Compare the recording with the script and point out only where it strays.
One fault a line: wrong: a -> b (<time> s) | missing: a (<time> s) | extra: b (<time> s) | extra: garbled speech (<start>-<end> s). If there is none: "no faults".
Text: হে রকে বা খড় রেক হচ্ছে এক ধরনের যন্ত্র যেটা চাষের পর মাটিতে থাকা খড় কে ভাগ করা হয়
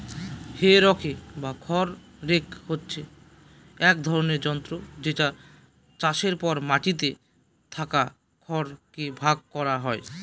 no faults